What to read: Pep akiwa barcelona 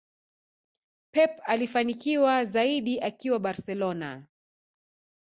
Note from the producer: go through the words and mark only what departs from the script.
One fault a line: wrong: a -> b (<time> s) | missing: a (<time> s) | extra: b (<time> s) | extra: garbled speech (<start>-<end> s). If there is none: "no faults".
extra: alifanikiwa zaidi (1.4 s)